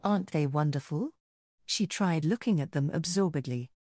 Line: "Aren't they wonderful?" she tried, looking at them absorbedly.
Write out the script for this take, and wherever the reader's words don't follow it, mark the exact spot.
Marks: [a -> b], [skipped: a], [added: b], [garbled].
"Aren't they wonderful?" she tried, looking at them absorbedly.